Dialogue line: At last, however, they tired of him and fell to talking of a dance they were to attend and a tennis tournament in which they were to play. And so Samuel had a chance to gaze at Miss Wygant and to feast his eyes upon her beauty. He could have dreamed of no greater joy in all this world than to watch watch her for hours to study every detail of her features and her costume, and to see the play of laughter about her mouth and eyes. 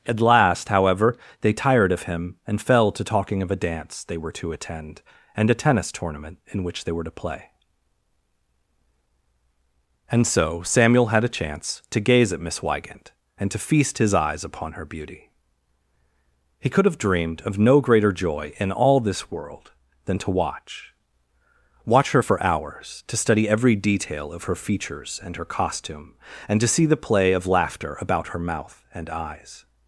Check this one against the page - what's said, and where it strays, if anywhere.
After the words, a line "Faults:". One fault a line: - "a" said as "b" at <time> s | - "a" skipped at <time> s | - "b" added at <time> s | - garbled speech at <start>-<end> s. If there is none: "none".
At last, however, they tired of him and fell to talking of a dance they were to attend and a tennis tournament in which they were to play. And so Samuel had a chance to gaze at Miss Wygant and to feast his eyes upon her beauty. He could have dreamed of no greater joy in all this world than to watch watch her for hours to study every detail of her features and her costume, and to see the play of laughter about her mouth and eyes.
Faults:
none